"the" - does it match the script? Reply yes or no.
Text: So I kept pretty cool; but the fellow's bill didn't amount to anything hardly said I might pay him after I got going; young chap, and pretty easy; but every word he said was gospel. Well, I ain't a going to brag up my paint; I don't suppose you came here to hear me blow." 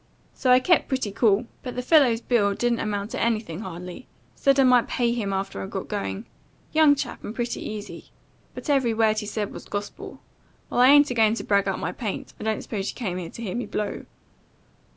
yes